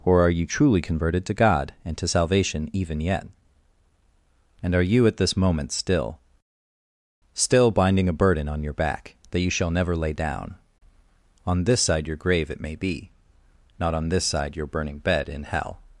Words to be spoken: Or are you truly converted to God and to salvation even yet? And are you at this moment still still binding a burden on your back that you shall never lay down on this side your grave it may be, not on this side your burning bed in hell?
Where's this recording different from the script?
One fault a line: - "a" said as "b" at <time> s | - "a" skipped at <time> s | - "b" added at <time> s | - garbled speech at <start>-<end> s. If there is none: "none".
none